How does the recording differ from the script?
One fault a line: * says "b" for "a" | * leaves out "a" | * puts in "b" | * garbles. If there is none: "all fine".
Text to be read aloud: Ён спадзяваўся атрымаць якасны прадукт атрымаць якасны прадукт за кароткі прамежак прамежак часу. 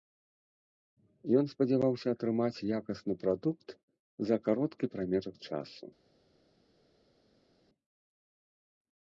* leaves out "атрымаць якасны прадукт"
* leaves out "прамежак"